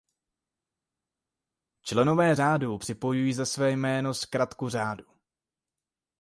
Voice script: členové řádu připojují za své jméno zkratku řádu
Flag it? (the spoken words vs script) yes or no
no